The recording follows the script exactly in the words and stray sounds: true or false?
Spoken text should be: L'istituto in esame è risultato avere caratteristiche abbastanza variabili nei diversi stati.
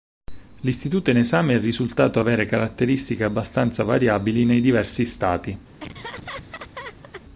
false